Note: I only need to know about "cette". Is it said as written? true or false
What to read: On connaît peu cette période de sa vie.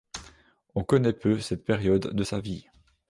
true